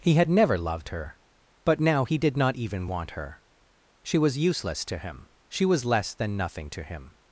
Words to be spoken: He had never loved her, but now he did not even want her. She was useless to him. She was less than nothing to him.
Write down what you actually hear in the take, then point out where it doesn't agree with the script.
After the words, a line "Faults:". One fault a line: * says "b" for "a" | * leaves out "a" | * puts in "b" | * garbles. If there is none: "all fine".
He had never loved her, but now he did not even want her. She was useless to him. She was less than nothing to him.
Faults:
all fine